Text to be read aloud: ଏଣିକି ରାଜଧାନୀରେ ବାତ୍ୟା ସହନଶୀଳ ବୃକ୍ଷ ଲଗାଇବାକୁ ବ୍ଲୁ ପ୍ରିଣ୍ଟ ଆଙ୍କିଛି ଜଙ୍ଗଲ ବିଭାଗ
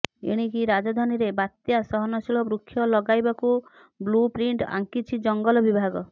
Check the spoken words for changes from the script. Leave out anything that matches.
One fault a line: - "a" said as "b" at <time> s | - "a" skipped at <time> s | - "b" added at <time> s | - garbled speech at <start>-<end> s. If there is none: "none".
none